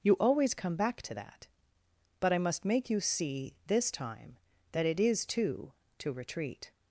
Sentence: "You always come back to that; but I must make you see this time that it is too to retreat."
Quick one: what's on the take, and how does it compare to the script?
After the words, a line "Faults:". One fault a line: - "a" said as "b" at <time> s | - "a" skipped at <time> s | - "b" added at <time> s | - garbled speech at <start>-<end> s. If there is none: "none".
"You always come back to that; but I must make you see this time that it is too to retreat."
Faults:
none